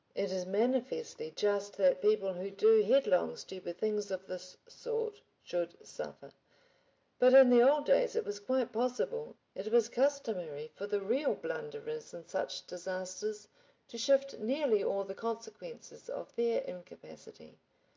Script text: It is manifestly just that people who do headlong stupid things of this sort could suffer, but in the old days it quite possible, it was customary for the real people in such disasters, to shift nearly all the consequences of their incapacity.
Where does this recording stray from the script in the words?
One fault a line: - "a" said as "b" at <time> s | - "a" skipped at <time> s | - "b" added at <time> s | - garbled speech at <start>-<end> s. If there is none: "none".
- "could" said as "should" at 5.4 s
- "was" added at 8.2 s
- "people" said as "blunderers" at 11.3 s